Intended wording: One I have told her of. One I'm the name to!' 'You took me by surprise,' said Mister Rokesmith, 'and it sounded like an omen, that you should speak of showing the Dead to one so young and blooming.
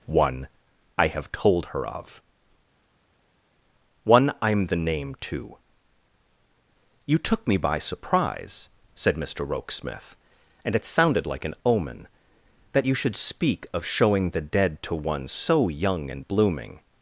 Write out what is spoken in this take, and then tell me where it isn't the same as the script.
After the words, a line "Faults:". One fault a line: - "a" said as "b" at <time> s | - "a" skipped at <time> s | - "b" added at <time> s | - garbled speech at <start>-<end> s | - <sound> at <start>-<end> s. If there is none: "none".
One I have told her of. One I'm the name to!' 'You took me by surprise,' said Mister Rokesmith, 'and it sounded like an omen, that you should speak of showing the Dead to one so young and blooming.
Faults:
none